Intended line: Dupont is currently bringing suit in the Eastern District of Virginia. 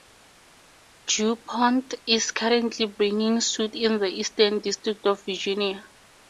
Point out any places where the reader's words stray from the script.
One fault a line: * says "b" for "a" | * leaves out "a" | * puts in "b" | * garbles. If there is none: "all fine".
all fine